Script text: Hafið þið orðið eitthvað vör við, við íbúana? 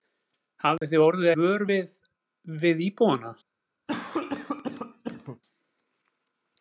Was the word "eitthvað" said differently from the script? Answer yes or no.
yes